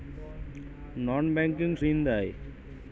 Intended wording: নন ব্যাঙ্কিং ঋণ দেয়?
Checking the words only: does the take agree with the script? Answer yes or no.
yes